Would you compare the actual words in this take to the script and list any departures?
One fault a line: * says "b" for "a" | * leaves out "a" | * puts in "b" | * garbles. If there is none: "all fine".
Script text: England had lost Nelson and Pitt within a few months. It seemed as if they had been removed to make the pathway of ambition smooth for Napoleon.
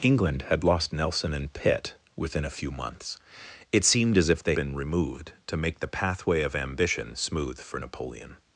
* leaves out "had"